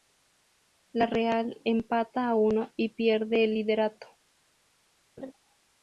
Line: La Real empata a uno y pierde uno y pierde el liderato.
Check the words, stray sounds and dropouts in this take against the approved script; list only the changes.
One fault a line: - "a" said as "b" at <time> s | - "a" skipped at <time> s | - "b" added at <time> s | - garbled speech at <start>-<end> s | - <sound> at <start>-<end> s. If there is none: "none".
- "uno y pierde" skipped at 3.4 s
- laugh at 5.2-5.3 s